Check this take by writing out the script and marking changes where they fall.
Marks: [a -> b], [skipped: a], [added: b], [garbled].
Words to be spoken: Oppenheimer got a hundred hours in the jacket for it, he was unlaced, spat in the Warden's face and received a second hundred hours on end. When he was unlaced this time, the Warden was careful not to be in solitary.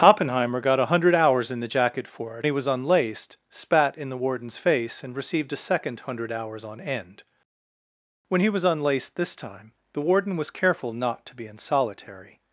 Oppenheimer got a hundred hours in the jacket for it, he was unlaced, spat in the Warden's face and received a second hundred hours on end. When he was unlaced this time, the Warden was careful not to be in solitary.